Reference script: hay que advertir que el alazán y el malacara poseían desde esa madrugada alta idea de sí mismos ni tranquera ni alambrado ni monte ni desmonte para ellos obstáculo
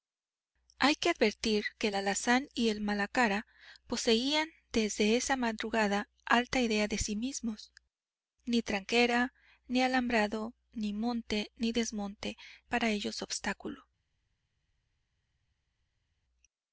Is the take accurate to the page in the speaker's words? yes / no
yes